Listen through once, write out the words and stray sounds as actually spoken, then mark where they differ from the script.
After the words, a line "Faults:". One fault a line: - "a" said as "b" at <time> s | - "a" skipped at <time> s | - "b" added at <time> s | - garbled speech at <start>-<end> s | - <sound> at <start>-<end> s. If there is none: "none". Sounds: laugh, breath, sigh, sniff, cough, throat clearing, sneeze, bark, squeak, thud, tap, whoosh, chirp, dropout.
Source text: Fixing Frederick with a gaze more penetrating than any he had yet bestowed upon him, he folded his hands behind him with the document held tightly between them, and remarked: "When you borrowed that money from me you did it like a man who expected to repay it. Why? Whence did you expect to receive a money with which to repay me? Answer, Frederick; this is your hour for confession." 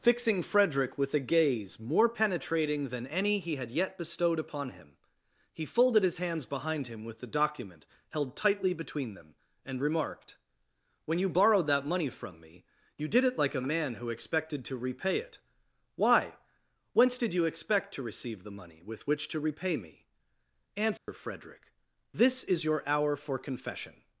Fixing Frederick with a gaze more penetrating than any he had yet bestowed upon him, he folded his hands behind him with the document held tightly between them, and remarked: "When you borrowed that money from me you did it like a man who expected to repay it. Why? Whence did you expect to receive the money with which to repay me? Answer, Frederick; this is your hour for confession."
Faults:
- "a" said as "the" at 18.4 s
- dropout at 21.0-21.1 s